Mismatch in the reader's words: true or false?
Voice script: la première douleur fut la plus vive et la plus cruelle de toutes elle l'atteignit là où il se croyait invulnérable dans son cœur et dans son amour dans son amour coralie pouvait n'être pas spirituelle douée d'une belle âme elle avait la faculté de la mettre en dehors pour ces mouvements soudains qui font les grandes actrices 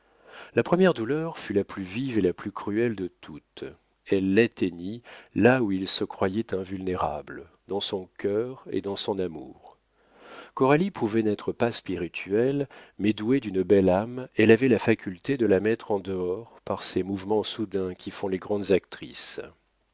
true